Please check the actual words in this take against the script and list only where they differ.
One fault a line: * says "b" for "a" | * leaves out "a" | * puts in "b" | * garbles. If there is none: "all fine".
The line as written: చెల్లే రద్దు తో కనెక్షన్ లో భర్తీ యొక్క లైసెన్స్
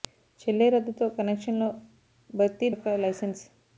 all fine